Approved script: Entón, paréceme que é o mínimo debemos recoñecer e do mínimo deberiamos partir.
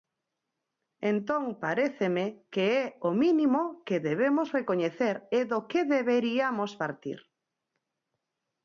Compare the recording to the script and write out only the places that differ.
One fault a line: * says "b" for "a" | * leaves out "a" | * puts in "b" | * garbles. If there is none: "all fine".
* puts in "que"
* says "que" for "mínimo"